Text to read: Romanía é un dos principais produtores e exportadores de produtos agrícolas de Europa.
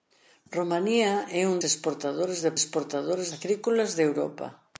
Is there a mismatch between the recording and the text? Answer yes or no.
yes